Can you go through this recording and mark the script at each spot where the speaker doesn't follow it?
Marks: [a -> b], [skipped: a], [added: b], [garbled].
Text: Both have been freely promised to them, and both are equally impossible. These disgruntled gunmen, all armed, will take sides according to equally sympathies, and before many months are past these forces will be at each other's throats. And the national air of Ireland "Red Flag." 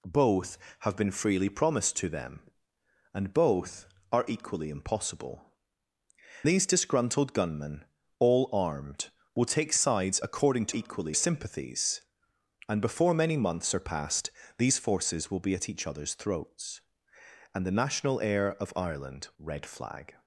Both have been freely promised to them, and both are equally impossible. These disgruntled gunmen, all armed, will take sides according to equally sympathies, and before many months are past these forces will be at each other's throats. And the national air of Ireland "Red Flag."